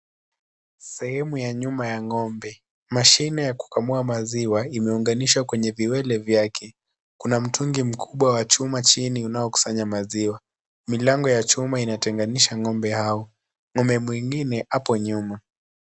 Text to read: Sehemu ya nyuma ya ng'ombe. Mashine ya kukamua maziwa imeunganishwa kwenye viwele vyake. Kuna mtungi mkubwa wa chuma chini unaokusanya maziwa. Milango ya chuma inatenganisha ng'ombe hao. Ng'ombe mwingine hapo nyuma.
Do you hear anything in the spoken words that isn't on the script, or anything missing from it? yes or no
no